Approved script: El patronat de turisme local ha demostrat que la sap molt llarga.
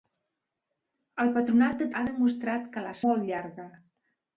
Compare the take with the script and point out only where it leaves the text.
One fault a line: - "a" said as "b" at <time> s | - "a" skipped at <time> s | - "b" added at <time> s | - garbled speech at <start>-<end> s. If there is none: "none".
- "turisme local" skipped at 1.9 s
- "sap" skipped at 3.0 s